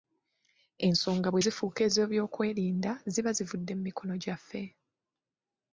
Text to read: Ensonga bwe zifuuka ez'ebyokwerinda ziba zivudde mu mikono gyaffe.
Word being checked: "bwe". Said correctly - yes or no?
yes